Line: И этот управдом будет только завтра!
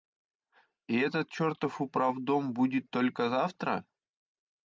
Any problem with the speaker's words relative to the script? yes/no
yes